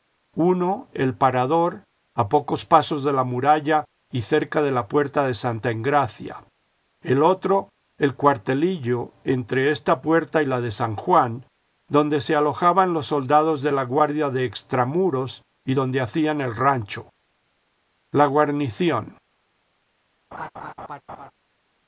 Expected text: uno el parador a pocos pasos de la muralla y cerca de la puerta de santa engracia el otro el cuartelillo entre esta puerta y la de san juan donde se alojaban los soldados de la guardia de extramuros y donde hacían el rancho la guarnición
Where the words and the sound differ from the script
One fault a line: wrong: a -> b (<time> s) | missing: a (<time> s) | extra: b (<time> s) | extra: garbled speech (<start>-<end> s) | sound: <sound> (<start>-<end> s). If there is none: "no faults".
sound: laugh (20.3-21.3 s)